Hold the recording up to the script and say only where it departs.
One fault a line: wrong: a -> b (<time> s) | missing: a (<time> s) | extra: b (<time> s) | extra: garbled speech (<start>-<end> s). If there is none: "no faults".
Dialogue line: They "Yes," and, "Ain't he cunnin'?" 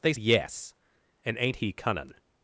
no faults